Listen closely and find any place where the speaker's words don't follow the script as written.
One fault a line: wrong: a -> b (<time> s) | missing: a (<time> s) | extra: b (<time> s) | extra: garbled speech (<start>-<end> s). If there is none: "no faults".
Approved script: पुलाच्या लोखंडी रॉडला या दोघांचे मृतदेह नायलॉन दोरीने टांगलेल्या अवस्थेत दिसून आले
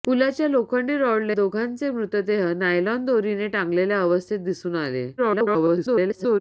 missing: या (1.3 s)
extra: garbled speech (5.2-6.4 s)